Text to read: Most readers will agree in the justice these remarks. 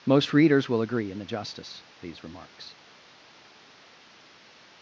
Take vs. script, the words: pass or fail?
pass